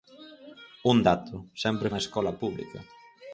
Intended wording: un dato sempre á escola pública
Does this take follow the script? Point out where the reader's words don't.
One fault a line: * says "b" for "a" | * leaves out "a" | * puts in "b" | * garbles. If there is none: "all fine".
all fine